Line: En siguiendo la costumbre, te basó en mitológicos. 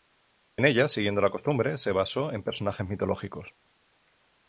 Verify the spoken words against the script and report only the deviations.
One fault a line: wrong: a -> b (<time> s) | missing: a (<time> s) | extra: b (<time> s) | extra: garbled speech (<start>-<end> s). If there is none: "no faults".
extra: ella (0.7 s)
wrong: te -> se (1.8 s)
extra: personajes (2.4 s)